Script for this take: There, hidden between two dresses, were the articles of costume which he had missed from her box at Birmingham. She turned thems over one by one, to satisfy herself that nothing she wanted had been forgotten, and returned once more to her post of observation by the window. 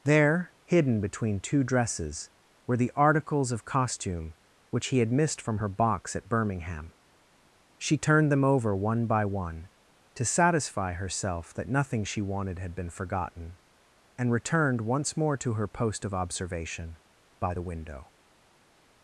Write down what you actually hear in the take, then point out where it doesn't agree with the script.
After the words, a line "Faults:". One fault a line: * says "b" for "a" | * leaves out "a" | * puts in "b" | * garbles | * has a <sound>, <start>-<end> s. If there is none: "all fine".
There, hidden between two dresses, were the articles of costume which he had missed from her box at Birmingham. She turned them over one by one, to satisfy herself that nothing she wanted had been forgotten, and returned once more to her post of observation by the window.
Faults:
* says "them" for "thems"